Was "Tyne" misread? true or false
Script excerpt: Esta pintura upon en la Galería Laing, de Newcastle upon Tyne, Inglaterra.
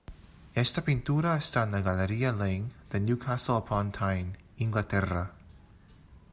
false